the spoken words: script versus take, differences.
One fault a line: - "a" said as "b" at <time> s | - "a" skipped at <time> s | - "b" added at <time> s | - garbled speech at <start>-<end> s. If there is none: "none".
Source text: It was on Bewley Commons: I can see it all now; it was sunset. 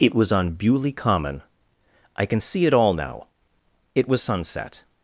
- "Commons" said as "Common" at 0.9 s